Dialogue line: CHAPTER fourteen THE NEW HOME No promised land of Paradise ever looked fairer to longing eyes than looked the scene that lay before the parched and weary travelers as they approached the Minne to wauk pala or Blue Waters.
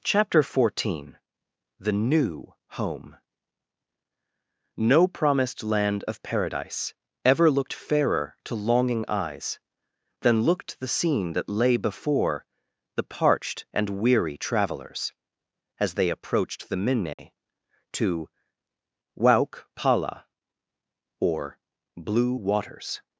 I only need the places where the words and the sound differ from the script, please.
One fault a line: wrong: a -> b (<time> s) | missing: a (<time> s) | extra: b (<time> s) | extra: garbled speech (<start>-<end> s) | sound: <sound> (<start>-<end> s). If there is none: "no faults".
sound: dropout (17.1-17.2 s)